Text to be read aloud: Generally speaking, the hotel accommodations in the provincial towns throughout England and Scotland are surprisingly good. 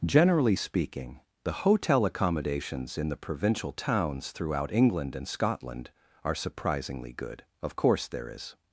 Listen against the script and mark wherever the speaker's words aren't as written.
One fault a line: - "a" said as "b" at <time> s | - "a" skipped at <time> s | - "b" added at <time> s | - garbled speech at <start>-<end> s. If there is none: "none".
- "Of course there is" added at 7.6 s